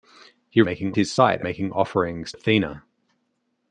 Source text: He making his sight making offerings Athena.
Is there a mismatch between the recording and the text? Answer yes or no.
no